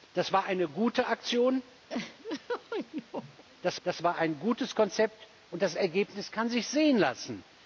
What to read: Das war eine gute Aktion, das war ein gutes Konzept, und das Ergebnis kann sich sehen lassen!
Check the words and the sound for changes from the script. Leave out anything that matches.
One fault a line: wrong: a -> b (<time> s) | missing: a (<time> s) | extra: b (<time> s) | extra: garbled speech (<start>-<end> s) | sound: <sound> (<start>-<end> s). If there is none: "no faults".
sound: laugh (1.9-3.4 s)
extra: das (3.8 s)